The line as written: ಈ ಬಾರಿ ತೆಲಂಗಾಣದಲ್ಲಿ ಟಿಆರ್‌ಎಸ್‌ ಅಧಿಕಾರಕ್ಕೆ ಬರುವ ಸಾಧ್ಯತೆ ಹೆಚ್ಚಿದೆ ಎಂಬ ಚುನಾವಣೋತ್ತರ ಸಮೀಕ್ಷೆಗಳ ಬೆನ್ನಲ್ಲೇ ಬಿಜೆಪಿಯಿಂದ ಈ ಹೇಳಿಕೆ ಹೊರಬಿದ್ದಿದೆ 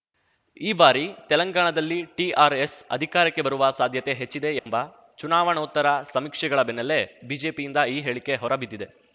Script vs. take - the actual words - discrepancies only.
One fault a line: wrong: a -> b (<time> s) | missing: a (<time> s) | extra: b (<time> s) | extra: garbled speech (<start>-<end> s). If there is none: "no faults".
no faults